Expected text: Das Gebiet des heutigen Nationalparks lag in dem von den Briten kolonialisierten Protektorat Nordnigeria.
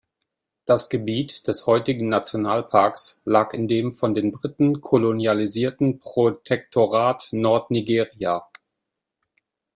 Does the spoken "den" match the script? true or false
true